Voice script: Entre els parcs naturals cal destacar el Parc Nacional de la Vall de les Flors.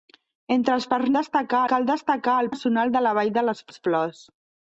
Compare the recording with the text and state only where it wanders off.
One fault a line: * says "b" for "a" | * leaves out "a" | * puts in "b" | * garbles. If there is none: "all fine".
* says "destacar" for "naturals"
* leaves out "Parc"
* puts in "les"